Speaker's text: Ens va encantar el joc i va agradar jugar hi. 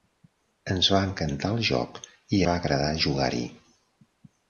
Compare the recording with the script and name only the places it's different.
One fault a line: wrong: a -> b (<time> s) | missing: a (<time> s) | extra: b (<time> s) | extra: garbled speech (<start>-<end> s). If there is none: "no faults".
no faults